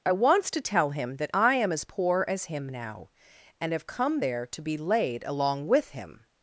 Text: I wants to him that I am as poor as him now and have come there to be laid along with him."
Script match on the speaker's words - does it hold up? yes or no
no